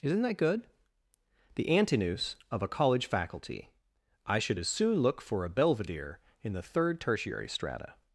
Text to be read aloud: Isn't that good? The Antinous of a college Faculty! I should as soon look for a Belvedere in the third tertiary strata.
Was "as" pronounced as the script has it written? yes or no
yes